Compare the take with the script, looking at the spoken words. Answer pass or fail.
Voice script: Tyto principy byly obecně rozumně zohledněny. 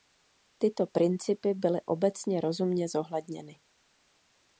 pass